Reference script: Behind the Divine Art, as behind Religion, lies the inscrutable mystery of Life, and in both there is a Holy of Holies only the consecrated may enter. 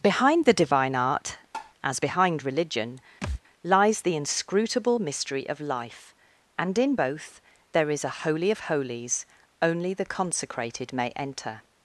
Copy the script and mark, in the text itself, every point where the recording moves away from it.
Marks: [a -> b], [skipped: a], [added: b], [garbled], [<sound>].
Behind the Divine Art, [tap] as behind Religion, [thud] lies the inscrutable mystery of Life, and in both there is a Holy of Holies only the consecrated may enter.